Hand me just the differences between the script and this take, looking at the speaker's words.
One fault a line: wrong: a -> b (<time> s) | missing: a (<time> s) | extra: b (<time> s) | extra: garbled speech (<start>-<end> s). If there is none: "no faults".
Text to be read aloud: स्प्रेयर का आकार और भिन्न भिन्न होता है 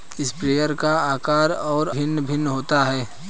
no faults